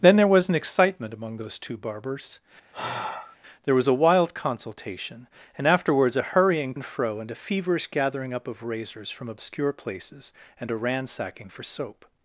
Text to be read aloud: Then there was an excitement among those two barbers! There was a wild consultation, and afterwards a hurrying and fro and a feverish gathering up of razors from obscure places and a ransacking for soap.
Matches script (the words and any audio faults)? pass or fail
fail